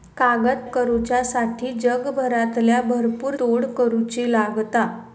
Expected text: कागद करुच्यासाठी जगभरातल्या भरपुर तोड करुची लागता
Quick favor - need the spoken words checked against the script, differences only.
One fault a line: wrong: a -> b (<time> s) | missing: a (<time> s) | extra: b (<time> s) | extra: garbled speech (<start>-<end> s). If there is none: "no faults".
no faults